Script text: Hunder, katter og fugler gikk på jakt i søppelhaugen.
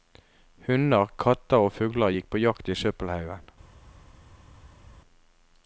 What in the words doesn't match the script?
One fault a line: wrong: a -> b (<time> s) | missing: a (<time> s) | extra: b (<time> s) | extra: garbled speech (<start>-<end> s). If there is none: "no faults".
no faults